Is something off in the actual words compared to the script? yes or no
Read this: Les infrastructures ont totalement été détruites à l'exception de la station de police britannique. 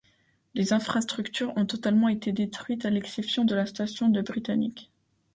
yes